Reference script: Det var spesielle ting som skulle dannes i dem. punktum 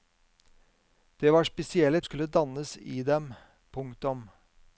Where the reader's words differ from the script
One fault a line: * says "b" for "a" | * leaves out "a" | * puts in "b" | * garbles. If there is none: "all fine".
* leaves out "ting som"